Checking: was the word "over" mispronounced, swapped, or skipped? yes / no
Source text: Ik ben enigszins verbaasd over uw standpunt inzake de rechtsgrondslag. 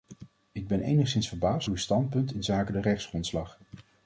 yes